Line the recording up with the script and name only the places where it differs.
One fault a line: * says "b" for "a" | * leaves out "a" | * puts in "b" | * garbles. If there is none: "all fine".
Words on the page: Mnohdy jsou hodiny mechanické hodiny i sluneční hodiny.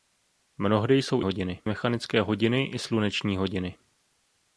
all fine